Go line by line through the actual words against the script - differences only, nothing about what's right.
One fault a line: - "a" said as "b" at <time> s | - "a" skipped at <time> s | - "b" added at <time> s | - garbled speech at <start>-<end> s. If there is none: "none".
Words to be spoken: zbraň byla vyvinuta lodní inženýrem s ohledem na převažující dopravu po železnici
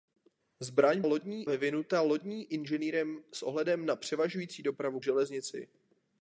- "byla" said as "lodní" at 1.0 s
- "po" skipped at 5.0 s